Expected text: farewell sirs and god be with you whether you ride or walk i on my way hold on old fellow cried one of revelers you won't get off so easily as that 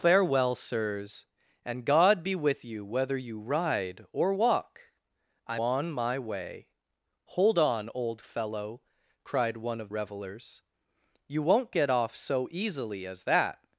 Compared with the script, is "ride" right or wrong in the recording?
right